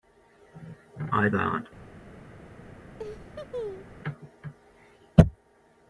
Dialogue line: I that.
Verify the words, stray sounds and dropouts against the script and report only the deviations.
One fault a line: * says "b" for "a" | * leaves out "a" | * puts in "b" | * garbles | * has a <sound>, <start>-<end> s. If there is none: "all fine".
* has a laugh, 3.0-3.9 s